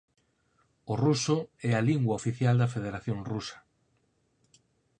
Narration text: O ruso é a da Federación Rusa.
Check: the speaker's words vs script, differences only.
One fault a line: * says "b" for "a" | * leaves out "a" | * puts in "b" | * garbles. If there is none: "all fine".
* puts in "lingua oficial"